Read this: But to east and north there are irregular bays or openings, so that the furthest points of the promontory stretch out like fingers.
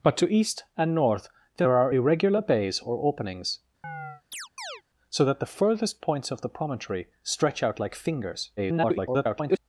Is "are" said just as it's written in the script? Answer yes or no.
yes